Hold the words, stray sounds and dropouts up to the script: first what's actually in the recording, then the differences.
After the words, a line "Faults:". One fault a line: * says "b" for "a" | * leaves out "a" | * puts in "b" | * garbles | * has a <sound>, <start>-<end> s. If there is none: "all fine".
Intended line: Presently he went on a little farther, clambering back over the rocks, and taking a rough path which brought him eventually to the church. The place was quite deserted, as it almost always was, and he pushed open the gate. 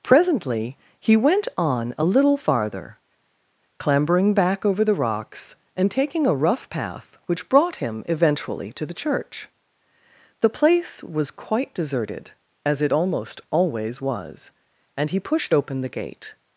Presently he went on a little farther, clambering back over the rocks, and taking a rough path which brought him eventually to the church. The place was quite deserted, as it almost always was, and he pushed open the gate.
Faults:
all fine